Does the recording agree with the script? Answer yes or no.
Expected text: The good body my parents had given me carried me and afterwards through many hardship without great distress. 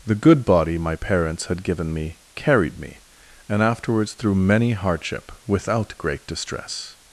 yes